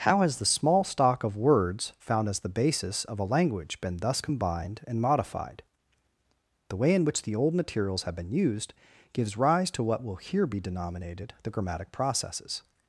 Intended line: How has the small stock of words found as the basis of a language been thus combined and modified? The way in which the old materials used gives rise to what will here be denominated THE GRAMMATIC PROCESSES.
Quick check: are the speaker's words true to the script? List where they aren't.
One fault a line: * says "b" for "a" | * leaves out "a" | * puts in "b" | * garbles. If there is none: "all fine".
* puts in "have been"